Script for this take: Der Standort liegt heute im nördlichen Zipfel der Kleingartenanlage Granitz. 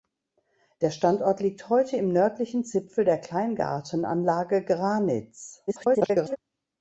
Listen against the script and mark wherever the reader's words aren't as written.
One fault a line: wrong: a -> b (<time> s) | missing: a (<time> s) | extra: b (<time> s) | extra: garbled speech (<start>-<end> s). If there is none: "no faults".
extra: garbled speech (5.7-6.4 s)